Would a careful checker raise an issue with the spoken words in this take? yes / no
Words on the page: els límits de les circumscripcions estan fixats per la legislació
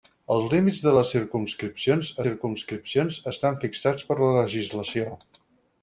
yes